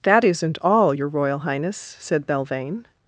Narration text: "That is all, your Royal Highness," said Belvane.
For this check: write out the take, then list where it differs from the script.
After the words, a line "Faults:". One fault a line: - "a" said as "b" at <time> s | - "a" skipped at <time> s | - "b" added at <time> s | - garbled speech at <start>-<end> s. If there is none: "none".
"That isn't all, your Royal Highness," said Belvane.
Faults:
- "is" said as "isn't" at 0.2 s